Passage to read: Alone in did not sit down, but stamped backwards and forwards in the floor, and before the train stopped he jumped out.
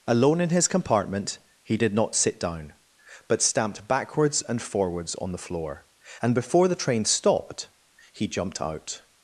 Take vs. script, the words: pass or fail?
fail